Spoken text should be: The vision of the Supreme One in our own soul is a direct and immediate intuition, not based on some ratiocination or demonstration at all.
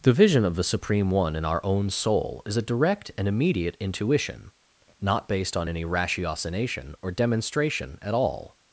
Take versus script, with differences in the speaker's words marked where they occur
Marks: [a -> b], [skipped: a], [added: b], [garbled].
The vision of the Supreme One in our own soul is a direct and immediate intuition, not based on [some -> any] ratiocination or demonstration at all.